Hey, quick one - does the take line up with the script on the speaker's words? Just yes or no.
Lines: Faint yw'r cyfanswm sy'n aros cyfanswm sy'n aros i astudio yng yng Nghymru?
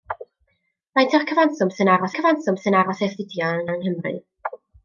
yes